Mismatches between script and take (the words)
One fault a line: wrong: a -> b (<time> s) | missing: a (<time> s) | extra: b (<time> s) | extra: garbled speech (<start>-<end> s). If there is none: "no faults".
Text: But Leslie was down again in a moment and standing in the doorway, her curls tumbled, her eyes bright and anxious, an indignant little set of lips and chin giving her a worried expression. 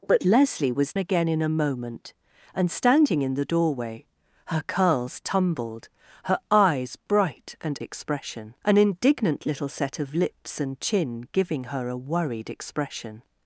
missing: down (0.9 s)
wrong: anxious -> expression (7.8 s)